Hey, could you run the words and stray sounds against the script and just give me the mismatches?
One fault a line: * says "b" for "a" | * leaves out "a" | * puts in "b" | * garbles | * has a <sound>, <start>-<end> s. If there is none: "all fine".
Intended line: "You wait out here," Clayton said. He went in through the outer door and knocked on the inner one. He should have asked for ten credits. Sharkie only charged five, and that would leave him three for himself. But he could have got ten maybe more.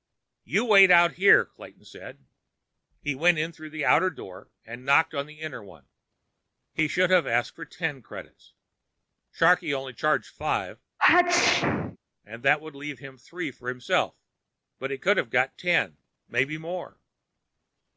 * has a sneeze, 11.0-12.0 s